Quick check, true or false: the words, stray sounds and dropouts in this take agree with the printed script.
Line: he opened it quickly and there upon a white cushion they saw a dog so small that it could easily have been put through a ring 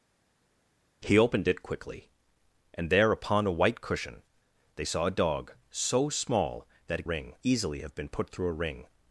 false